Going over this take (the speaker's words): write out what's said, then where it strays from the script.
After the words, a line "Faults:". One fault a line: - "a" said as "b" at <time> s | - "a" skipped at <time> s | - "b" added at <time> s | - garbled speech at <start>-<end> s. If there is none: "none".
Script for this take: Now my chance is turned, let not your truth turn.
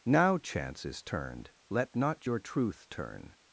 Now chance is turned, let not your truth turn.
Faults:
- "my" skipped at 0.4 s